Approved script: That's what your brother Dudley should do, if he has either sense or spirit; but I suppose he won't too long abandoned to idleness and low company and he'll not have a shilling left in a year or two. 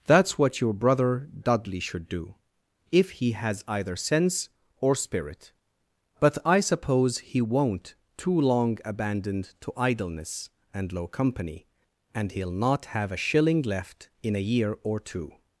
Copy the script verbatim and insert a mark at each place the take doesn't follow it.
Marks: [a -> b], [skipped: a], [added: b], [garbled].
That's what your brother Dudley should do, if he has either sense or spirit; but I suppose he won't too long abandoned to idleness and low company and he'll not have a shilling left in a year or two.